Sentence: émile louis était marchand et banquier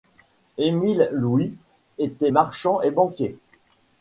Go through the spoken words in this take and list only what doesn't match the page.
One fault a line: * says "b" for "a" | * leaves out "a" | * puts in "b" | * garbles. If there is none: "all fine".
all fine